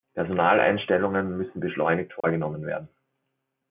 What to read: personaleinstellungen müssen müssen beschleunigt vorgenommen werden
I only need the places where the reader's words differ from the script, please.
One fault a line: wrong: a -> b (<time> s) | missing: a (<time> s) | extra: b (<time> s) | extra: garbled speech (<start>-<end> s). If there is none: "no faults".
missing: müssen (1.6 s)